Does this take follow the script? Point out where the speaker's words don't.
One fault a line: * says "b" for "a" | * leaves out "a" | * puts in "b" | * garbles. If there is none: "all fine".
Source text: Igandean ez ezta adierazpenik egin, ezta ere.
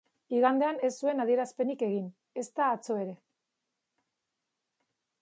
* says "zuen" for "ezta"
* puts in "atzo"